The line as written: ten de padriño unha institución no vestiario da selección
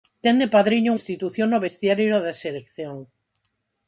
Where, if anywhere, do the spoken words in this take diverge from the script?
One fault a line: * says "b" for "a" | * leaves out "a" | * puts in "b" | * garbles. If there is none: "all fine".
* leaves out "unha"